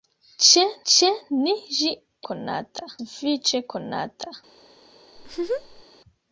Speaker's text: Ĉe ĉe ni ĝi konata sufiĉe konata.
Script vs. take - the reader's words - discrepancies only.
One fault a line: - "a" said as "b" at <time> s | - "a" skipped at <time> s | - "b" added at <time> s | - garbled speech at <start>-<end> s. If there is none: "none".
none